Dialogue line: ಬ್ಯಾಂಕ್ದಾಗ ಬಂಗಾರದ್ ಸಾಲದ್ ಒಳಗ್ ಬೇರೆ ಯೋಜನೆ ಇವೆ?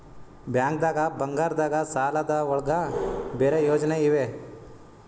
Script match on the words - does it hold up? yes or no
yes